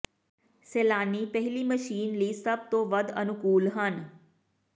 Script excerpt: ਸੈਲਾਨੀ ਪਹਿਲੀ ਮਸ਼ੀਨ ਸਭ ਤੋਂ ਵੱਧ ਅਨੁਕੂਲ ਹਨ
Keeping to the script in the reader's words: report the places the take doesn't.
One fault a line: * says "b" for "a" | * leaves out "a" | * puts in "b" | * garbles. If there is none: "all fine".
* puts in "ਲਈ"